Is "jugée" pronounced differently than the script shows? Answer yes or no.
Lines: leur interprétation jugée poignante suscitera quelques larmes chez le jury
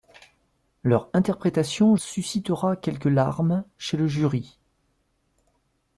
yes